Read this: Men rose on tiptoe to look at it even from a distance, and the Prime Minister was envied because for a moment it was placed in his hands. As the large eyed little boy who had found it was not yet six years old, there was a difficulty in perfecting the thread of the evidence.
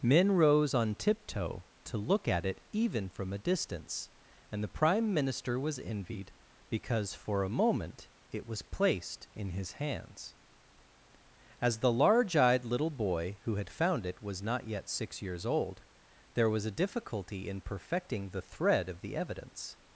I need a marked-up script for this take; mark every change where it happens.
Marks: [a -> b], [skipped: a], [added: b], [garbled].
Men rose on tiptoe to look at it even from a distance, and the Prime Minister was envied because for a moment it was placed in his hands. As the large eyed little boy who had found it was not yet six years old, there was a difficulty in perfecting the thread of the evidence.